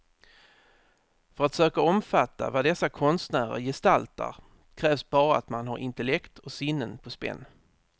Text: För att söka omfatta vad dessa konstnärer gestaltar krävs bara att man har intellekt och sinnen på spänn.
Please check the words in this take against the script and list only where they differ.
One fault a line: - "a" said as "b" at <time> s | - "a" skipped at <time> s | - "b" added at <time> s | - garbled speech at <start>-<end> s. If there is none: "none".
none